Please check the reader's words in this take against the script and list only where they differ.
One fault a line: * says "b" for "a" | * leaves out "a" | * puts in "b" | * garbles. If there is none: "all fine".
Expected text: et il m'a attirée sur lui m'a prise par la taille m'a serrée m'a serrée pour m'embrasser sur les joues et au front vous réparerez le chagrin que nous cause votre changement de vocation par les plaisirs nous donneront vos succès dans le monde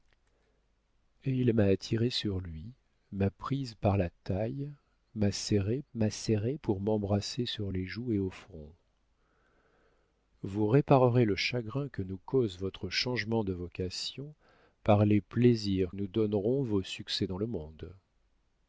all fine